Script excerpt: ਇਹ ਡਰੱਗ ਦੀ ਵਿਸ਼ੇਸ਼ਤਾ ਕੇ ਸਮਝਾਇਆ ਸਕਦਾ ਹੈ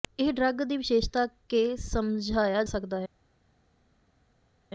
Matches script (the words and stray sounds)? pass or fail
pass